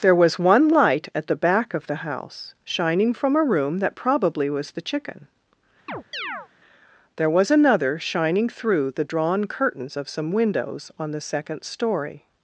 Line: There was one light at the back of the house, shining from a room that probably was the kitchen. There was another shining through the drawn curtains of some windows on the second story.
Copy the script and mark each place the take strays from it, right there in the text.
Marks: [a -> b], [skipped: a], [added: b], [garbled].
There was one light at the back of the house, shining from a room that probably was the [kitchen. -> chicken] There was another shining through the drawn curtains of some windows on the second story.